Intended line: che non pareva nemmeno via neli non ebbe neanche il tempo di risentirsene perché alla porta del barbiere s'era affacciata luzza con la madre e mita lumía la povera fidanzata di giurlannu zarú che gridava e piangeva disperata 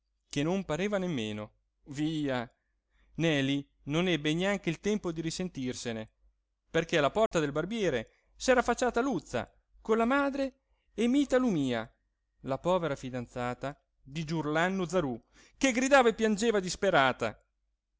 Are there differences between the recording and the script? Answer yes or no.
no